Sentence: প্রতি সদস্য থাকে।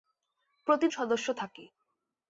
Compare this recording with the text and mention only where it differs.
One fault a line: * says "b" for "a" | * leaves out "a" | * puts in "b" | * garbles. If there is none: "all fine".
all fine